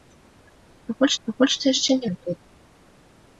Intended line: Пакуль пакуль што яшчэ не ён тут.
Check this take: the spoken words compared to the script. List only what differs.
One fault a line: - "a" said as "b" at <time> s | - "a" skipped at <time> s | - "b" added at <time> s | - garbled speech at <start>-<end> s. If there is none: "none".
none